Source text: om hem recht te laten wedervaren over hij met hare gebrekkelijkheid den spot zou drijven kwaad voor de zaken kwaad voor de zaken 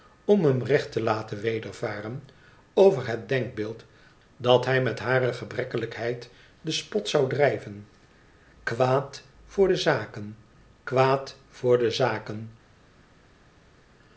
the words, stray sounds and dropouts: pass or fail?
fail